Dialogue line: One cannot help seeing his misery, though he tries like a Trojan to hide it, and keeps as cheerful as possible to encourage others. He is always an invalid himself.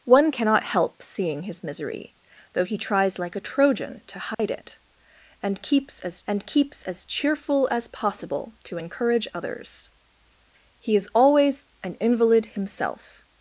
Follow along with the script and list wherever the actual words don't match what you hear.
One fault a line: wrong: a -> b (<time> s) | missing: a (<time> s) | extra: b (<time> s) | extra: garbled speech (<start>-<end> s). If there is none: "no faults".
extra: and keeps as (6.3 s)